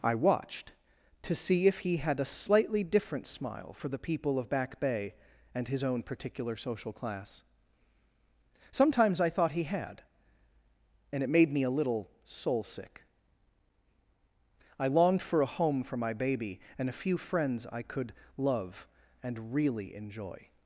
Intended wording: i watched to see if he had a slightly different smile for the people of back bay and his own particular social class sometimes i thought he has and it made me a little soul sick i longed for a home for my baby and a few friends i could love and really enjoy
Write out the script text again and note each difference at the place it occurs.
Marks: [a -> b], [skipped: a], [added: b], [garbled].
i watched to see if he had a slightly different smile for the people of back bay and his own particular social class sometimes i thought he [has -> had] and it made me a little soul sick i longed for a home for my baby and a few friends i could love and really enjoy